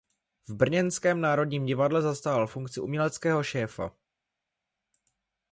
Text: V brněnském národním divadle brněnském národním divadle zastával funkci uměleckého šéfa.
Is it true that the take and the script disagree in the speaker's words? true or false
true